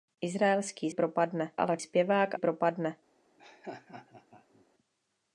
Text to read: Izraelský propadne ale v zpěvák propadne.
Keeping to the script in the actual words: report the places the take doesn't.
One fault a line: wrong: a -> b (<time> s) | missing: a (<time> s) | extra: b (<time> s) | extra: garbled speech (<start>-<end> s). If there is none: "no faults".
no faults